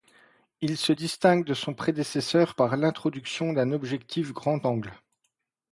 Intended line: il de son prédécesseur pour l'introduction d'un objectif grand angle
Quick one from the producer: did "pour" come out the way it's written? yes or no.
no